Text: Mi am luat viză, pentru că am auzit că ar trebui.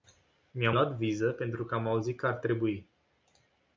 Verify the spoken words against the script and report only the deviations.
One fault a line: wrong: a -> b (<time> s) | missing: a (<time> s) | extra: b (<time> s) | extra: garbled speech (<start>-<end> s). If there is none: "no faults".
no faults